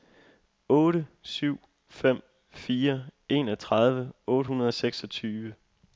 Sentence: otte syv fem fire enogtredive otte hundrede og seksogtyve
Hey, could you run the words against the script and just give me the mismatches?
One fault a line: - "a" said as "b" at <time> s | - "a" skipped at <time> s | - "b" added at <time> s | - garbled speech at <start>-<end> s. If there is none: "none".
none